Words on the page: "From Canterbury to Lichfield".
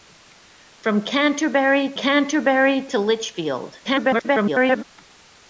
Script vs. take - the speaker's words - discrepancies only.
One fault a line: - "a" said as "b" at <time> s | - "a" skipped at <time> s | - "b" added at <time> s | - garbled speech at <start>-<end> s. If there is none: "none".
- "Canterbury" added at 1.9 s
- garbled speech at 3.8-4.8 s